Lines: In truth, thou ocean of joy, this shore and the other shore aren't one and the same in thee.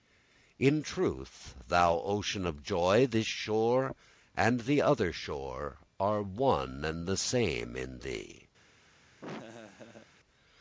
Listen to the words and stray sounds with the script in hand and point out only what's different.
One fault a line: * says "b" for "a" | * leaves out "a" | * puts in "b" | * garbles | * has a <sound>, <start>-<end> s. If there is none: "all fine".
* says "are" for "aren't"
* has a laugh, 9.2-10.1 s